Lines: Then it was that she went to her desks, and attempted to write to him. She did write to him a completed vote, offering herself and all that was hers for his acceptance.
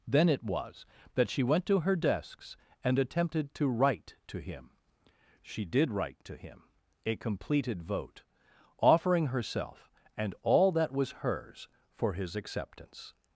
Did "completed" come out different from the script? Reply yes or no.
no